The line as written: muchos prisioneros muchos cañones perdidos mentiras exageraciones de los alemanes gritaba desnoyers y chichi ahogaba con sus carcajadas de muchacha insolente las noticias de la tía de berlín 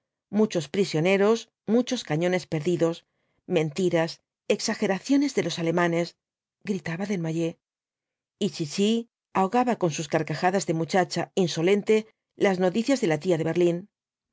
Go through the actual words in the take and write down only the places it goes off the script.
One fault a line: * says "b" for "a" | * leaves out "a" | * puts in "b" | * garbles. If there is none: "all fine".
all fine